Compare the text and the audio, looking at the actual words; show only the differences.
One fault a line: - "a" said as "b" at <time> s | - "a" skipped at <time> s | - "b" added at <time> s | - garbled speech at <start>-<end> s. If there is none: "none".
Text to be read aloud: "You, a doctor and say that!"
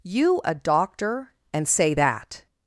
none